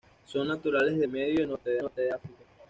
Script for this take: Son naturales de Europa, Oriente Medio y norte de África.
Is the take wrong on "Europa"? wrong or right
wrong